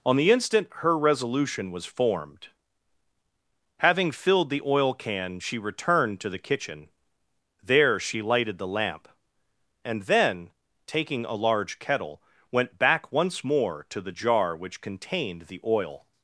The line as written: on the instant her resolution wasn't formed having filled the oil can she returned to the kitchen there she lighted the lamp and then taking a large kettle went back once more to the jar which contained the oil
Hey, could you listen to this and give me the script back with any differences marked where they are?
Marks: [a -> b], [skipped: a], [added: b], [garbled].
on the instant her resolution [wasn't -> was] formed having filled the oil can she returned to the kitchen there she lighted the lamp and then taking a large kettle went back once more to the jar which contained the oil